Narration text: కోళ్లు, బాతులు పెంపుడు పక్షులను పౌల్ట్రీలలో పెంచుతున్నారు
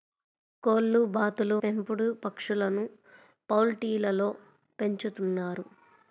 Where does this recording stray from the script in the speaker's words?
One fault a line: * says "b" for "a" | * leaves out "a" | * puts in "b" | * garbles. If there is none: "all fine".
all fine